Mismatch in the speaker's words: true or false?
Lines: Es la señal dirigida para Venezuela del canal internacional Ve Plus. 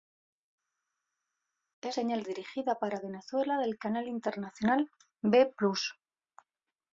true